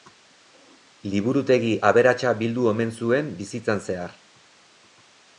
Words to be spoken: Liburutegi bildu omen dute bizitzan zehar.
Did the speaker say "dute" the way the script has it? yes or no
no